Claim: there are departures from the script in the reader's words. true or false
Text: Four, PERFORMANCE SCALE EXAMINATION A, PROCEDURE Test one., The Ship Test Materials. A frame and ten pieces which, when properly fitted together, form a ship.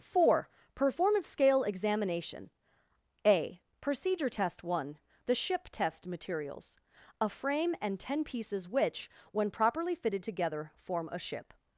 false